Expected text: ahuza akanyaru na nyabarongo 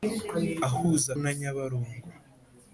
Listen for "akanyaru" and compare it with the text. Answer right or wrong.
wrong